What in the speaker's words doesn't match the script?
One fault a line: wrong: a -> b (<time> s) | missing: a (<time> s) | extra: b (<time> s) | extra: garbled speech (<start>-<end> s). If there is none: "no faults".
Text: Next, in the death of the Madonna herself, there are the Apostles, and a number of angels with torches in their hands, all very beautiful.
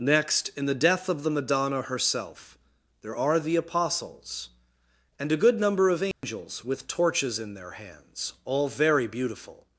extra: good (5.4 s)